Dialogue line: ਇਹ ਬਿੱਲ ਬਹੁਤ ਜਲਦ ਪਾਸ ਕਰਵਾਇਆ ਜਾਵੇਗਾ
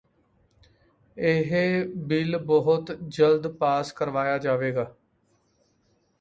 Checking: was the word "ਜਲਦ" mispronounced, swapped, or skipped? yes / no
no